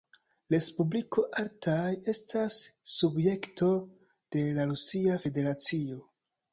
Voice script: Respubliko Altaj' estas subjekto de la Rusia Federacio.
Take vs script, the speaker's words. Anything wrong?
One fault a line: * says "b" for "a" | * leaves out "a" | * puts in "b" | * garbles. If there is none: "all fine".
all fine